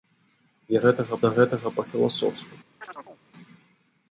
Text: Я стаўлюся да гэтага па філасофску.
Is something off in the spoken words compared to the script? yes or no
yes